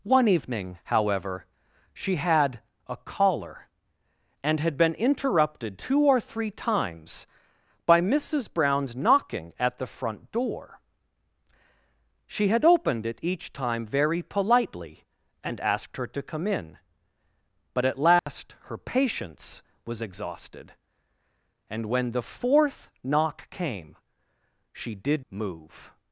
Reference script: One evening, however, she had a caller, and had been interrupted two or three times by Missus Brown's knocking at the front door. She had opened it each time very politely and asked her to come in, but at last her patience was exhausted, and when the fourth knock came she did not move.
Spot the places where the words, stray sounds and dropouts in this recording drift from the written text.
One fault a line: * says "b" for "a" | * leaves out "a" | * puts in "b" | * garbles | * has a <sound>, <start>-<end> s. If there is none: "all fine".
* has a dropout, 18.2-18.3 s
* leaves out "not"